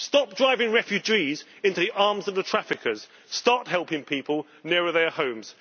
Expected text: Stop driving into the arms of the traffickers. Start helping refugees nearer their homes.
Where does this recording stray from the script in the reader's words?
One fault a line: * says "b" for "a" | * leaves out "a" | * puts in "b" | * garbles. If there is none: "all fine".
* puts in "refugees"
* says "people" for "refugees"